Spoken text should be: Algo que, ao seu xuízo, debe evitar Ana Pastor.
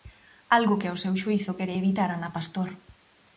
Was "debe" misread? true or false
true